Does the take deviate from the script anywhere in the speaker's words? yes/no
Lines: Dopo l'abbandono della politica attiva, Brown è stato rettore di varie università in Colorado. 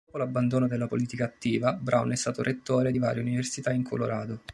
no